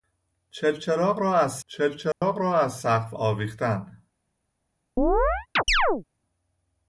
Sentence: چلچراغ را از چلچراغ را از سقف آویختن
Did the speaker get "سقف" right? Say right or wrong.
right